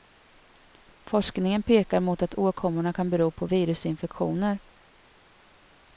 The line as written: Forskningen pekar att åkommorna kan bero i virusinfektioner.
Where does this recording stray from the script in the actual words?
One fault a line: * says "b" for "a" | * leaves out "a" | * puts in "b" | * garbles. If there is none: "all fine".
* puts in "mot"
* says "på" for "i"